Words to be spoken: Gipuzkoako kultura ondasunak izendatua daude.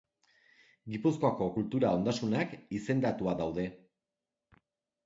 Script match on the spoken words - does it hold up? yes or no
yes